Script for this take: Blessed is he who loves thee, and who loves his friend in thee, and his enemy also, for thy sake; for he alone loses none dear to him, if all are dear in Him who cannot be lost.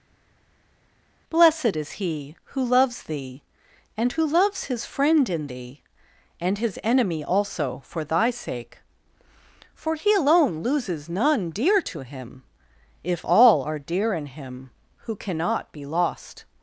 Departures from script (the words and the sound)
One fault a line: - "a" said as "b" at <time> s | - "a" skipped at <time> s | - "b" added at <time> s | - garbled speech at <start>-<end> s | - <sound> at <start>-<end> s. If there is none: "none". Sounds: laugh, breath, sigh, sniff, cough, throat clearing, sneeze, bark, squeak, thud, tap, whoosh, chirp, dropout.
none